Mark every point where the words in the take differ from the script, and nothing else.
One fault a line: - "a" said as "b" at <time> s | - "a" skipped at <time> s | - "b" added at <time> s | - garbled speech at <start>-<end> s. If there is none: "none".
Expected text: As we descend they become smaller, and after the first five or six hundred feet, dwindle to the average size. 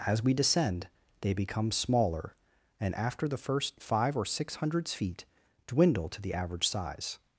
- "hundred" said as "hundreds" at 4.5 s